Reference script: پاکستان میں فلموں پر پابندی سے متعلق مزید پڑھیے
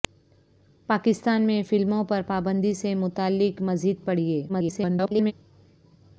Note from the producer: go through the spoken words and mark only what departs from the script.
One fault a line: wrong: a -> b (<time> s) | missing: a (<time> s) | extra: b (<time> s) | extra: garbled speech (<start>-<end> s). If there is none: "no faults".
extra: garbled speech (4.5-5.3 s)